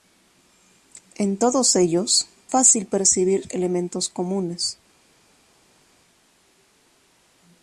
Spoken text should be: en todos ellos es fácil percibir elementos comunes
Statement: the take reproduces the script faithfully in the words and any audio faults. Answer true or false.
false